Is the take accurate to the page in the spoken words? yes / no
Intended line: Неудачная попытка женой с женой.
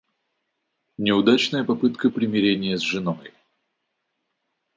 no